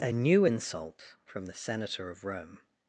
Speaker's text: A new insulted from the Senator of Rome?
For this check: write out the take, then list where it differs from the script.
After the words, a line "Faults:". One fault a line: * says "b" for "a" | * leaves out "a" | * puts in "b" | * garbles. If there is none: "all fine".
A new insult from the Senator of Rome?
Faults:
* says "insult" for "insulted"